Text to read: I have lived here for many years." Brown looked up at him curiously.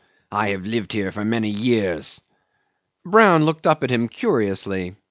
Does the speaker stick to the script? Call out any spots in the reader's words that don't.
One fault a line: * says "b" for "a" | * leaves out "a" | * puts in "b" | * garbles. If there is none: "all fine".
all fine